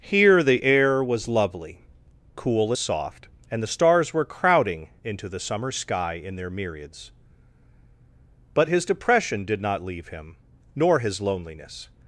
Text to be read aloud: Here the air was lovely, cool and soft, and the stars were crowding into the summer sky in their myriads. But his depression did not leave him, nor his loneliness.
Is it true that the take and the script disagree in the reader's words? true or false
true